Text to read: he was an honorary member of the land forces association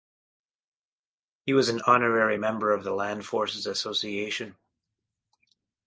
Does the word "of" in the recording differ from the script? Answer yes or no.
no